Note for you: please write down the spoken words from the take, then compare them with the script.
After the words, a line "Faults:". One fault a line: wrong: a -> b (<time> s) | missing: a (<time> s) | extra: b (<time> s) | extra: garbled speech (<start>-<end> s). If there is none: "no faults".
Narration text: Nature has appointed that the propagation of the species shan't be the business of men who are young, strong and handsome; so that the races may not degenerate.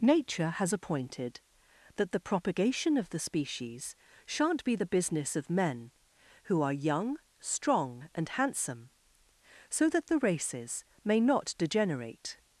Nature has appointed that the propagation of the species shan't be the business of men who are young, strong and handsome; so that the races may not degenerate.
Faults:
no faults